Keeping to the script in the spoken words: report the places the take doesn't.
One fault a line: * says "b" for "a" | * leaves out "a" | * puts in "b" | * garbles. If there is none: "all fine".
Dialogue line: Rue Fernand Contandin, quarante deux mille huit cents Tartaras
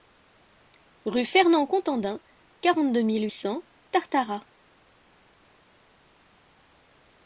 * leaves out "huit"